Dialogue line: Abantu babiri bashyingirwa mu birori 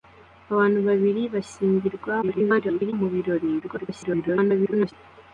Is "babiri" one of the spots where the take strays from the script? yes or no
no